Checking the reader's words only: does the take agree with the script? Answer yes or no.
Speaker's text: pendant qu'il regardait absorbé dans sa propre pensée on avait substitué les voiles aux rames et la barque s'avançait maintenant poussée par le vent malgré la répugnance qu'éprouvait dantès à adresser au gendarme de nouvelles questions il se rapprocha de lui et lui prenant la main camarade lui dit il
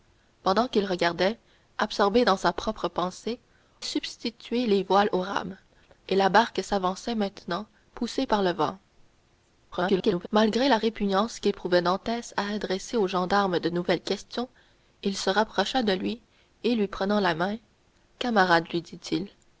no